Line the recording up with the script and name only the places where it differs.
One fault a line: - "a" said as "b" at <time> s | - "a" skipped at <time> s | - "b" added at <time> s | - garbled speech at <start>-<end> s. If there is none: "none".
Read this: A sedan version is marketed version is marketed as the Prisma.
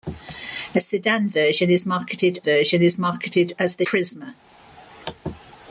none